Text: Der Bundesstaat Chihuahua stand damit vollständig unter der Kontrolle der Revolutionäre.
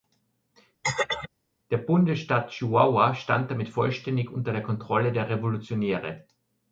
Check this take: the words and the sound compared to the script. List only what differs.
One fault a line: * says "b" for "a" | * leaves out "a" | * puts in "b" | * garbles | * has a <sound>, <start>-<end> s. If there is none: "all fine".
* has a throat clearing, 0.8-1.3 s